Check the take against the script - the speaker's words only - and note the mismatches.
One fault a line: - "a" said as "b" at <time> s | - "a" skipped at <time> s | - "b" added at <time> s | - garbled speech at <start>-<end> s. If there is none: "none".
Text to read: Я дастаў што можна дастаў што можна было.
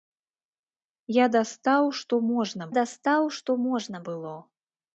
none